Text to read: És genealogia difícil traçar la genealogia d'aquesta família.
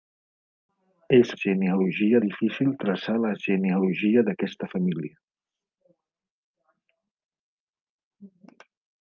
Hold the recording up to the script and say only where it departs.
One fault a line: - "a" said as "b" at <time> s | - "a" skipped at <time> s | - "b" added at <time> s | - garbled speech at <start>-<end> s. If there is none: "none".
none